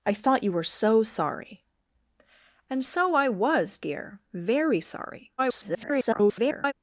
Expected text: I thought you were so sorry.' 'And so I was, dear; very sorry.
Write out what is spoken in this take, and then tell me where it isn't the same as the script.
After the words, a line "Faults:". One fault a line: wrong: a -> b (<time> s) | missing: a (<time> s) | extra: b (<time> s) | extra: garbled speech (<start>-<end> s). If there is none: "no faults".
I thought you were so sorry.' 'And so I was, dear; very sorry. [garbled]
Faults:
extra: garbled speech (5.4-6.7 s)